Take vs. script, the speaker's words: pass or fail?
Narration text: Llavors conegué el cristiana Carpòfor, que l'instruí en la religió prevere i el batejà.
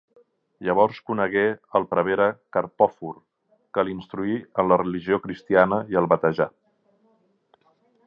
fail